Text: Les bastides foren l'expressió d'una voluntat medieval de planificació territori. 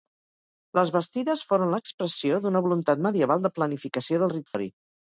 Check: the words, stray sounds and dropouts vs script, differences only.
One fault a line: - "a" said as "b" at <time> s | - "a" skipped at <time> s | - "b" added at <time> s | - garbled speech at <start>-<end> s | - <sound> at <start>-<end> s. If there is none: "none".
- dropout at 4.5-4.5 s